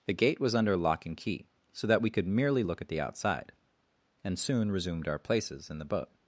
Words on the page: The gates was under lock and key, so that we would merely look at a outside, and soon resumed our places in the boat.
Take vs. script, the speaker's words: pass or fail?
fail